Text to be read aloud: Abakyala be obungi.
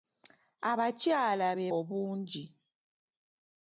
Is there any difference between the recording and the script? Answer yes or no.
no